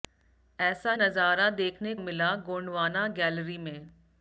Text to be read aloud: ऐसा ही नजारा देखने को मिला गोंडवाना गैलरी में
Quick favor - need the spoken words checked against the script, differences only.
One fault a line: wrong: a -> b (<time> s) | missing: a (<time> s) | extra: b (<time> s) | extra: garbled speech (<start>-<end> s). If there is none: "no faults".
missing: ही (0.9 s)
missing: को (1.9 s)